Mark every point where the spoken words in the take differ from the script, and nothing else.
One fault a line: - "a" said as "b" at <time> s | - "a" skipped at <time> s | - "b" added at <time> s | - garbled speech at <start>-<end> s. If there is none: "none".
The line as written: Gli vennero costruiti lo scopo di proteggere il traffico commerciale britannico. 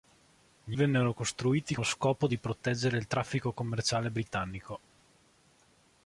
none